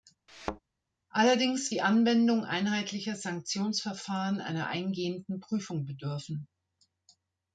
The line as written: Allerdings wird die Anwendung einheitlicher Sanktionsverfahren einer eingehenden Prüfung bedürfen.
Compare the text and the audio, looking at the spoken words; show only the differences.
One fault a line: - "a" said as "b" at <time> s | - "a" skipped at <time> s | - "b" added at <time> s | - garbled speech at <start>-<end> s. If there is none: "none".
- "wird" skipped at 1.7 s